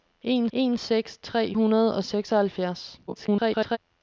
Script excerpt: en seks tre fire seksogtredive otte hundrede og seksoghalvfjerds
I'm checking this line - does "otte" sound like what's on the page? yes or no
no